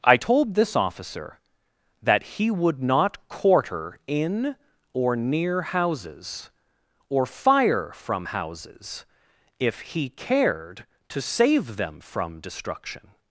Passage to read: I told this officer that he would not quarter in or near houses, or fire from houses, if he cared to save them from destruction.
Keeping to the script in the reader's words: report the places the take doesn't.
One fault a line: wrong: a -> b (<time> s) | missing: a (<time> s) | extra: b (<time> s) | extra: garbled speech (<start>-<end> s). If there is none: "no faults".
no faults